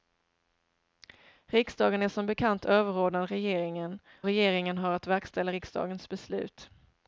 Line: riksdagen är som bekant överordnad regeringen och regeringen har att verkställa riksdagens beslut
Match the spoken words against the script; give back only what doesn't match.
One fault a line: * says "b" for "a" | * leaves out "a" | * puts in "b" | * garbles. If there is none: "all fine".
* leaves out "och"